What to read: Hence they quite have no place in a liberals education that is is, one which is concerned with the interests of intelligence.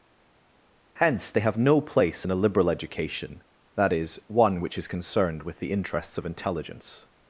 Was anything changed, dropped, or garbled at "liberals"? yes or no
yes